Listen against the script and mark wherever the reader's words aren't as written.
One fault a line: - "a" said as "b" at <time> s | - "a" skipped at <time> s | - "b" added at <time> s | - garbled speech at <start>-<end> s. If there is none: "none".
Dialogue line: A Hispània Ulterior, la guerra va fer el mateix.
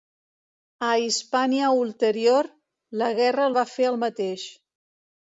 none